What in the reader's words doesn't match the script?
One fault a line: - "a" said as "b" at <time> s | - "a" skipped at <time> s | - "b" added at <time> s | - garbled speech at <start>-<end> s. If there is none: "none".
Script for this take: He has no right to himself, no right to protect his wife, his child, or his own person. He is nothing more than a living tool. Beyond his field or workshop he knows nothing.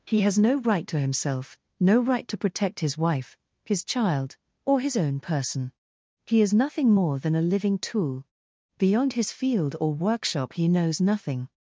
none